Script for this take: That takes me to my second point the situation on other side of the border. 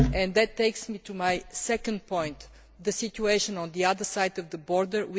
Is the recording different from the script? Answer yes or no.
yes